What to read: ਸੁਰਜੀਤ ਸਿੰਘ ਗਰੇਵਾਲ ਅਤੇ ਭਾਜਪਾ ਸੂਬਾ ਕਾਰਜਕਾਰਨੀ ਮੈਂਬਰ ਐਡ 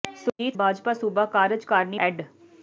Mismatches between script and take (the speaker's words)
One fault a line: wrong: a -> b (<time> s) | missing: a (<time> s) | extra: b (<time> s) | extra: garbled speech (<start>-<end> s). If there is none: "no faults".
missing: ਸਿੰਘ ਗਰੇਵਾਲ ਅਤੇ (0.6 s)
missing: ਮੈਂਬਰ (2.0 s)